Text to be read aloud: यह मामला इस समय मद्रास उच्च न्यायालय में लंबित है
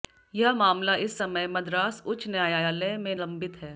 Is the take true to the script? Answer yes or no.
yes